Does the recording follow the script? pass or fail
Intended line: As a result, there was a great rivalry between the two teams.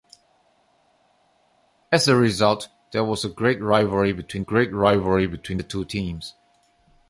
fail